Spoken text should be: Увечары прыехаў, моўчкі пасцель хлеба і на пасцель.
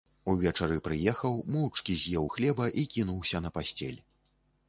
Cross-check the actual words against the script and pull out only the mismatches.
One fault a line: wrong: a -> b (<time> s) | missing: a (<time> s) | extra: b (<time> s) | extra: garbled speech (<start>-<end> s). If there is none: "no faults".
wrong: пасцель -> з'еў (2.0 s)
extra: кінуўся (2.9 s)